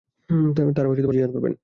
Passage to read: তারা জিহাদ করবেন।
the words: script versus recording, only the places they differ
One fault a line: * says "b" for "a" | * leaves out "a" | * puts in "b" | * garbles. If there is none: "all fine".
all fine